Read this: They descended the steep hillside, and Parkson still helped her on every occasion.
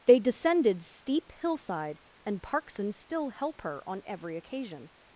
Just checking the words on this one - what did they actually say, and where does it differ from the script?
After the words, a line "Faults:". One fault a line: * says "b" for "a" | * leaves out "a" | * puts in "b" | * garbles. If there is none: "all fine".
They descended steep hillside, and Parkson still help her on every occasion.
Faults:
* leaves out "the"
* says "help" for "helped"